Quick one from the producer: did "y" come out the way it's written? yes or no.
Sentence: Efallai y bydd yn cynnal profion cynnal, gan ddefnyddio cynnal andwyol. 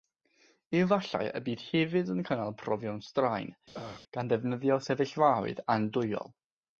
yes